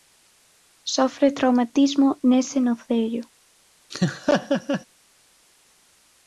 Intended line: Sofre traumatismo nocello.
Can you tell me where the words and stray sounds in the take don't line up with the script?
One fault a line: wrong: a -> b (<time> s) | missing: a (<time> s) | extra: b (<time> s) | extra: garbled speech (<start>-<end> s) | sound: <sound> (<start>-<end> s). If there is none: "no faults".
extra: nese (2.2 s)
sound: laugh (3.9-4.9 s)